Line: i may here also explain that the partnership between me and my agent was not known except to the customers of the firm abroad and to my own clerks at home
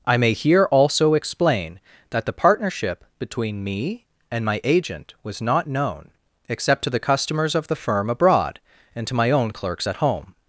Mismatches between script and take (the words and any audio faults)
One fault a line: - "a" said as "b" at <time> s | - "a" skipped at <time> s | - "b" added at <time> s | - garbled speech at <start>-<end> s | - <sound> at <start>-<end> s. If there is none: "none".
none